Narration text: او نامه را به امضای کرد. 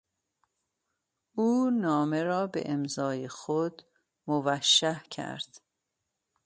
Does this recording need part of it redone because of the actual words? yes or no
yes